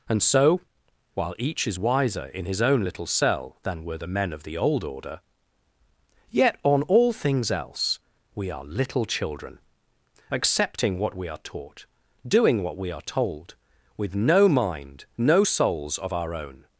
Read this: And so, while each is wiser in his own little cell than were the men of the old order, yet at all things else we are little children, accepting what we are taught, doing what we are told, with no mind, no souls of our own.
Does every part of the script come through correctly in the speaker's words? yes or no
no